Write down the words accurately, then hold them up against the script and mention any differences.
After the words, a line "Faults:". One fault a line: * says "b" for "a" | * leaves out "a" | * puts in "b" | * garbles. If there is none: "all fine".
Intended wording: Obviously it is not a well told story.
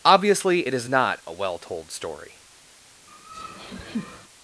Obviously it is not a well told story.
Faults:
all fine